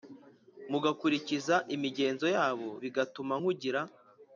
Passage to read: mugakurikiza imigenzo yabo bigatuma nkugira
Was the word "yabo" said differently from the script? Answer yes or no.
no